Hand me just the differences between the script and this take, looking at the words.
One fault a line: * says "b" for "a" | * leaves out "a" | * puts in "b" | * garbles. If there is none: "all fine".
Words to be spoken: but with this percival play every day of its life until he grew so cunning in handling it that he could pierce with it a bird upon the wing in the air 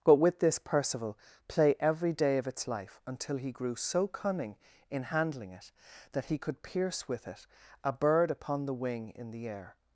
all fine